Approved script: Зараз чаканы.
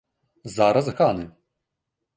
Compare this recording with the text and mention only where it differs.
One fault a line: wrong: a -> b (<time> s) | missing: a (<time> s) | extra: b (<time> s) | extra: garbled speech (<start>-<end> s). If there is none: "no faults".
no faults